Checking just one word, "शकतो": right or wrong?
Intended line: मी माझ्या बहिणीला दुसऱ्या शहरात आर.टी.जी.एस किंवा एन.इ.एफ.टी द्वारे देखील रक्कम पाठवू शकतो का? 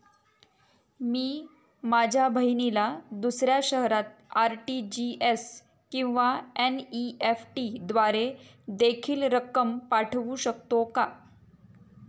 right